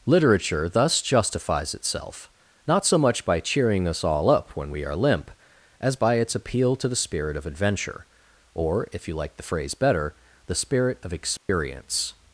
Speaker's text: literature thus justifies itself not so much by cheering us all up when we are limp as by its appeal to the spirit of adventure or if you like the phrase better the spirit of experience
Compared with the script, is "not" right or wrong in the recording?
right